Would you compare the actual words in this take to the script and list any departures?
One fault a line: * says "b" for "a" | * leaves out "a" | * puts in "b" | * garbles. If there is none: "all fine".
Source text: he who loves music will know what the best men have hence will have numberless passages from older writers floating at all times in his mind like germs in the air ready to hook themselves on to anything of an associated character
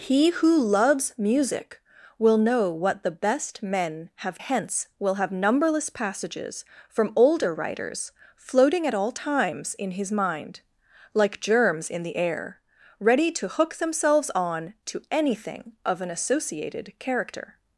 all fine